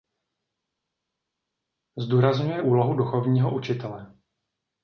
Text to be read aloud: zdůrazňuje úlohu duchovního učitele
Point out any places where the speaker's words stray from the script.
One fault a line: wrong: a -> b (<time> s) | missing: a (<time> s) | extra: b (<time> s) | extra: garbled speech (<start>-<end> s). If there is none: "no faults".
no faults